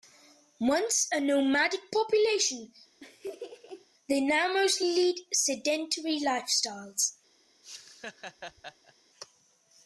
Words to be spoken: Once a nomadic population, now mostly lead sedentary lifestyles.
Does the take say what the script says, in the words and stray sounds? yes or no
no